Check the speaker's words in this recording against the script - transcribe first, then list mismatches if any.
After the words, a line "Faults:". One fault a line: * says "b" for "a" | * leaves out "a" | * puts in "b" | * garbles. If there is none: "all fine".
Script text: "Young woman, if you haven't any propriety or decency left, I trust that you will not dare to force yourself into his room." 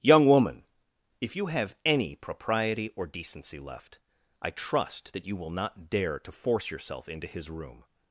"Young woman, if you have any propriety or decency left, I trust that you will not dare to force yourself into his room."
Faults:
* says "have" for "haven't"